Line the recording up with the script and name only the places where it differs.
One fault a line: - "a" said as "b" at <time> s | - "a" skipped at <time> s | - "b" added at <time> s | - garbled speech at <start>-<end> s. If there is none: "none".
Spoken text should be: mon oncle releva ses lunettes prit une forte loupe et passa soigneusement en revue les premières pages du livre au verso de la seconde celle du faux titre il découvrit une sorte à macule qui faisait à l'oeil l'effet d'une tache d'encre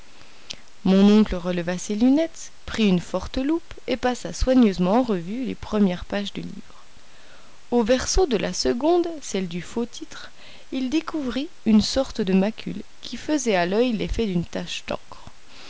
- "à" said as "de" at 12.2 s